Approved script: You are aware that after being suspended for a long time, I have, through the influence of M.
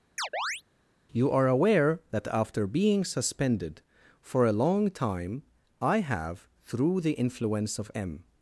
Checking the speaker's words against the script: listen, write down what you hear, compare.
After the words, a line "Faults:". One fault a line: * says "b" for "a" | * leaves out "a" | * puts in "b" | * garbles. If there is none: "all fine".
You are aware that after being suspended for a long time, I have, through the influence of M.
Faults:
all fine